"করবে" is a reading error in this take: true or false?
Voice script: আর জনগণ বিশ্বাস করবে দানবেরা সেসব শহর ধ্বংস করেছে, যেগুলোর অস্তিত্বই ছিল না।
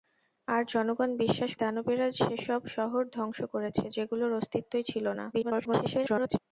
true